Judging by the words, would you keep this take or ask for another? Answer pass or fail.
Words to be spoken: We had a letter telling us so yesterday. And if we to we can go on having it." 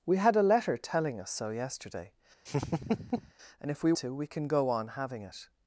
pass